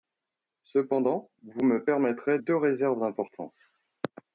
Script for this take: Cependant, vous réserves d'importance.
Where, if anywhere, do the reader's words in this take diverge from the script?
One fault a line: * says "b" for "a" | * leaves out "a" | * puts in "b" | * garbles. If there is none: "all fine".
* puts in "me permettrez deux"